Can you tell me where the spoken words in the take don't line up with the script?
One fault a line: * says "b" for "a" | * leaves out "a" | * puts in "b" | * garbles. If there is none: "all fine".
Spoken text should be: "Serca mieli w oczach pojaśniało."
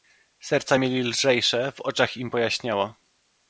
* puts in "lżejsze"
* puts in "im"